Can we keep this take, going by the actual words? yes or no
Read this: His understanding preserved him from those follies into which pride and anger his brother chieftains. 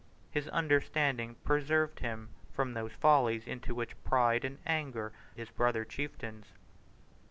yes